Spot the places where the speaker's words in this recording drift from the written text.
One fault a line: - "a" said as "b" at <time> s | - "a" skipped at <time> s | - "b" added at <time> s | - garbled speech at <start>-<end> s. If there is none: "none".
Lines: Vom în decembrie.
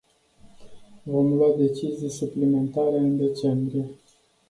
- "lua decizii suplimentare" added at 1.3 s